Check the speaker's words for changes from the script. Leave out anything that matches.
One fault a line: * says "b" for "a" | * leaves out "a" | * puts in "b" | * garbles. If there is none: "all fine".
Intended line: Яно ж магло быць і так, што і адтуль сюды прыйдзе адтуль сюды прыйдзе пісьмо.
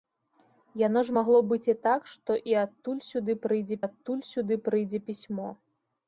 all fine